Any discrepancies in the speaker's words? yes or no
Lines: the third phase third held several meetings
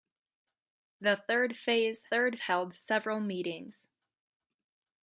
no